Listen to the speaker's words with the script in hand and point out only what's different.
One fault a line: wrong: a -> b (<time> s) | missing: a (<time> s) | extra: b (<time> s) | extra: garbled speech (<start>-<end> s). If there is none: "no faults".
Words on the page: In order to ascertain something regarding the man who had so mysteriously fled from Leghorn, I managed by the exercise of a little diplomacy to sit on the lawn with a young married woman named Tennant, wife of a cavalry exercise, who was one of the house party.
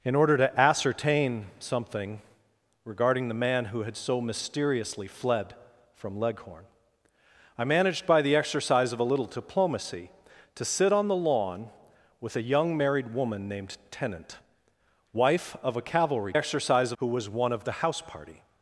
no faults